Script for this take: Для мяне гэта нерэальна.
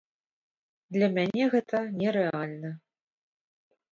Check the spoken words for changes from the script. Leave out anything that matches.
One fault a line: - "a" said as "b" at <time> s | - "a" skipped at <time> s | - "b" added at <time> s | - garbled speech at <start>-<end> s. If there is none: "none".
none